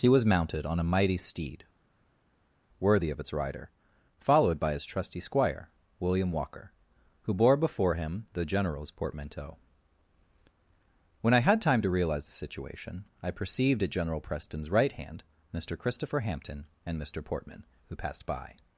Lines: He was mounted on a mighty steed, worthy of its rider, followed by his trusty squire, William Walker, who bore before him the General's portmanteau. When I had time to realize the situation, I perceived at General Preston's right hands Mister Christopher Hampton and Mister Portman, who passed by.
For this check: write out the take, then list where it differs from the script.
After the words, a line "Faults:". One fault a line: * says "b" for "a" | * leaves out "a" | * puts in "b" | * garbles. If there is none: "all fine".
He was mounted on a mighty steed, worthy of its rider, followed by his trusty squire, William Walker, who bore before him the General's portmanteau. When I had time to realize the situation, I perceived at General Preston's right hand Mister Christopher Hampton and Mister Portman, who passed by.
Faults:
* says "hand" for "hands"